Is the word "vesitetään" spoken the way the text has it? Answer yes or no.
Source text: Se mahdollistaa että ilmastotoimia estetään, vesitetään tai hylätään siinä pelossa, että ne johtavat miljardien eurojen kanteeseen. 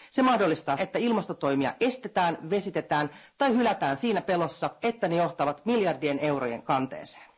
yes